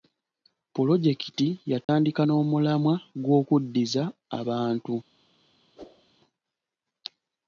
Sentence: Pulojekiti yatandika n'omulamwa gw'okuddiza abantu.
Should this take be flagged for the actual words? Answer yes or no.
no